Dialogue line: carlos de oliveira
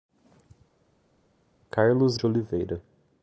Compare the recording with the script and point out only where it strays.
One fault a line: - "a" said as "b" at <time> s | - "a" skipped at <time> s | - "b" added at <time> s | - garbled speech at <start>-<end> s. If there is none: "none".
none